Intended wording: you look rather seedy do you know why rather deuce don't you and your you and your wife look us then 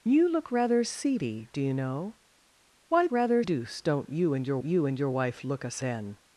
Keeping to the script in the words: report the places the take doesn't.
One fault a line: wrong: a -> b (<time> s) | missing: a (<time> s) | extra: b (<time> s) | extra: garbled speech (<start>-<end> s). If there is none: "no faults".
no faults